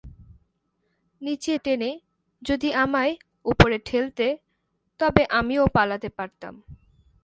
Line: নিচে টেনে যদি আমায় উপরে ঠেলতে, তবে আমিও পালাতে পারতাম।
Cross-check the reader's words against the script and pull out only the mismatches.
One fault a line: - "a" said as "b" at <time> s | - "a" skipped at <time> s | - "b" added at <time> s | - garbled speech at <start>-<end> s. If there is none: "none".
none